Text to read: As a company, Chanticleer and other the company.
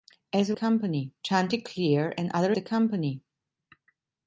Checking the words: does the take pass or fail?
pass